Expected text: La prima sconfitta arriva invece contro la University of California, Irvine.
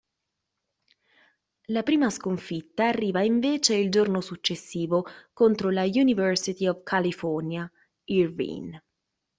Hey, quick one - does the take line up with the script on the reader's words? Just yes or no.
no